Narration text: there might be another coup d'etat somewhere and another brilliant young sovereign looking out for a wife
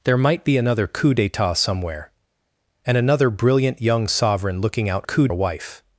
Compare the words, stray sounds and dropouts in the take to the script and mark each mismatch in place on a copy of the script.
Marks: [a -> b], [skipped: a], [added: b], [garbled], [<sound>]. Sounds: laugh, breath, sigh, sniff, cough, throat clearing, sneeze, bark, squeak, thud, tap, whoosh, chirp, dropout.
there might be another coup d'etat somewhere and another brilliant young sovereign looking out [for -> coup] a wife